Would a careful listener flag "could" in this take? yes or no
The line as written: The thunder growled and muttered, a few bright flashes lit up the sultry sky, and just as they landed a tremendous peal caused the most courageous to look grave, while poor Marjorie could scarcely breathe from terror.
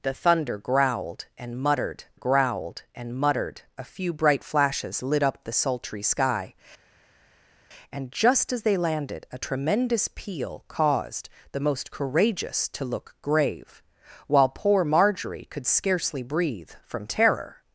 no